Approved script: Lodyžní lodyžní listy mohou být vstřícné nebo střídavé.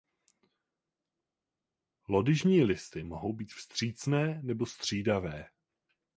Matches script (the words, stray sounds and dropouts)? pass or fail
fail